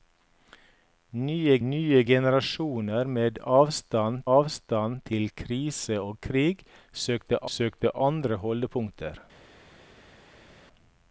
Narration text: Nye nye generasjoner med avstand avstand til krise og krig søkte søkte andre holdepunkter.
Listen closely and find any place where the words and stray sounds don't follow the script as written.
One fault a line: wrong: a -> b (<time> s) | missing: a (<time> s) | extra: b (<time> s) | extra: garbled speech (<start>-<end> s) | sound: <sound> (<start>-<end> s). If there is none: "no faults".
no faults